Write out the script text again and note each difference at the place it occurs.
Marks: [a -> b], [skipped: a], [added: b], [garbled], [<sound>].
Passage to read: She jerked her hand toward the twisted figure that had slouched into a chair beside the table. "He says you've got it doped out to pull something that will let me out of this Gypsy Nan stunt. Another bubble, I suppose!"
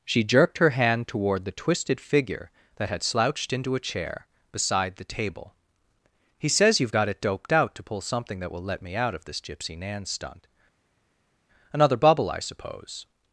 She jerked her hand toward the twisted figure that had slouched into a chair beside the table. "He says you've got it doped out to pull something that will let me out of this Gypsy Nan stunt. Another bubble, I suppose!"